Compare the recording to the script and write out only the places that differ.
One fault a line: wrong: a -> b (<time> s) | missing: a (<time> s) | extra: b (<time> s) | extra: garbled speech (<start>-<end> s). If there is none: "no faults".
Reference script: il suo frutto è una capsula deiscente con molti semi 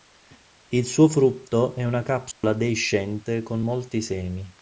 no faults